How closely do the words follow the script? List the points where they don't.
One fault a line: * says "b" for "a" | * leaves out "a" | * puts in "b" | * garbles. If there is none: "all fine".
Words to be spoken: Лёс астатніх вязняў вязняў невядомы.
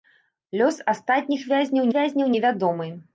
all fine